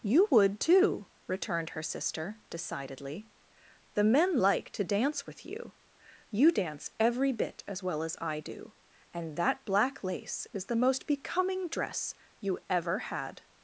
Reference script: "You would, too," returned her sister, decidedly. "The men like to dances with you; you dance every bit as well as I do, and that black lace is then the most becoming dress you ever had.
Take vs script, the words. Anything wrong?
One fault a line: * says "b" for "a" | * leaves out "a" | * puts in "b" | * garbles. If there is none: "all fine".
* says "dance" for "dances"
* leaves out "then"